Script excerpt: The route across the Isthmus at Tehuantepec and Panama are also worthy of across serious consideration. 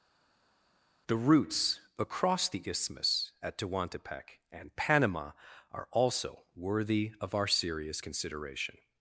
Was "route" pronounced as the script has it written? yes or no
no